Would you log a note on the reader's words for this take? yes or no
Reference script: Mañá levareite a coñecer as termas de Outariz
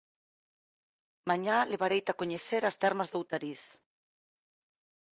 no